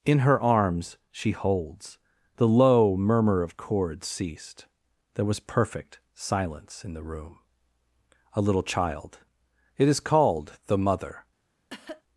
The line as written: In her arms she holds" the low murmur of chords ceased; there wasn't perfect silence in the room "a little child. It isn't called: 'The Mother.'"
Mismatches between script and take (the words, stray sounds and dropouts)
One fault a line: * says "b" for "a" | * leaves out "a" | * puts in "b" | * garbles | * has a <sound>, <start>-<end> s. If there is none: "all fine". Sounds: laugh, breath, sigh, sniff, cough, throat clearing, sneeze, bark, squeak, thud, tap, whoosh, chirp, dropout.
* says "was" for "wasn't"
* says "is" for "isn't"
* has a cough, 11.7-12.0 s